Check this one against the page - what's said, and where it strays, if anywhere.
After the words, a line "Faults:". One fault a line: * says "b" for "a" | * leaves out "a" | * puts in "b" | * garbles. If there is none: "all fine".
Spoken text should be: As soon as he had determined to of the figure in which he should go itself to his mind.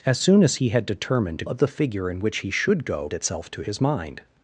As soon as he had determined to of the figure in which he should go itself to his mind.
Faults:
all fine